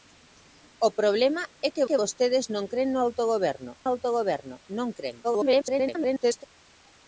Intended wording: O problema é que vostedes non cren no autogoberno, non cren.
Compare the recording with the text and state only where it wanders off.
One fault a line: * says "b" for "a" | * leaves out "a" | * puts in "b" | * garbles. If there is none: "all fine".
* puts in "que"
* puts in "autogoberno"
* garbles